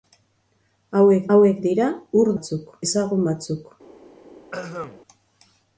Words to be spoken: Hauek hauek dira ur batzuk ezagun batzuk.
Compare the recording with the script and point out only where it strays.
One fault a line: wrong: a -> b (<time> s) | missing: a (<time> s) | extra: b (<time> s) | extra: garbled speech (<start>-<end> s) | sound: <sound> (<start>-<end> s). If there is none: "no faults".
sound: throat clearing (4.5-5.0 s)